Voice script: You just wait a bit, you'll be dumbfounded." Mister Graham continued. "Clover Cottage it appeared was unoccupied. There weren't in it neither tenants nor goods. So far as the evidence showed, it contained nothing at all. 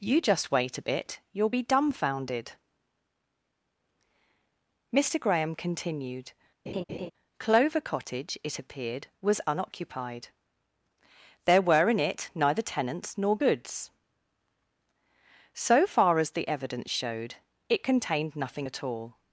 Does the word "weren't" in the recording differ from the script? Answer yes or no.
yes